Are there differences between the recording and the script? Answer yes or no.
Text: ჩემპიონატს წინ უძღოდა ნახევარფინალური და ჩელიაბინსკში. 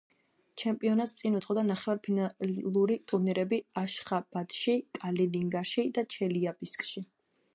yes